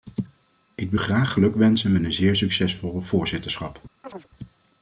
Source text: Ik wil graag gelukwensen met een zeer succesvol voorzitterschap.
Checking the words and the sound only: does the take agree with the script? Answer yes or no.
no